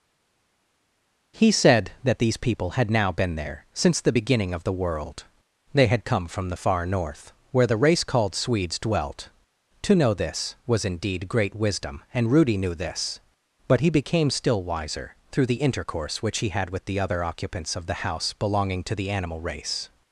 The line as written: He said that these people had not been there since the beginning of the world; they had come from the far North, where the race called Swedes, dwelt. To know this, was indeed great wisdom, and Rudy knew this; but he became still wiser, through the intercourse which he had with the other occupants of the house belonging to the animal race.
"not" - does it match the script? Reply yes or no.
no